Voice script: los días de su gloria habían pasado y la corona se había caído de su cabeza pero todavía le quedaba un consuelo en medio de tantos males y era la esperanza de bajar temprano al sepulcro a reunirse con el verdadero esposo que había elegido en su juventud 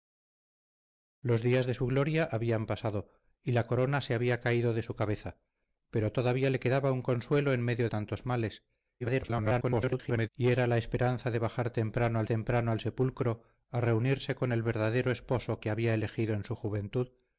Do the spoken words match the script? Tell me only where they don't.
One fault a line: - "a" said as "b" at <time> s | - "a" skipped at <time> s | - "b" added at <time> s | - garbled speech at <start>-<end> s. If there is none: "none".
- "de" skipped at 7.9 s
- garbled speech at 9.0-10.3 s
- "temprano al" added at 12.2 s